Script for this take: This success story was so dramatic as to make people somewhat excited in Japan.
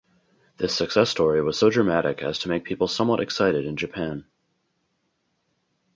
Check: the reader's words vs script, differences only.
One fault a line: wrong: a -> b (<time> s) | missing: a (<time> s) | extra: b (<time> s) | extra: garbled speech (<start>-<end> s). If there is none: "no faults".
no faults